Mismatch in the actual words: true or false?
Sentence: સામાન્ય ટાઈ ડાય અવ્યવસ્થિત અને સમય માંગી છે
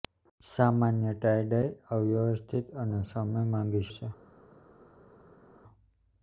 false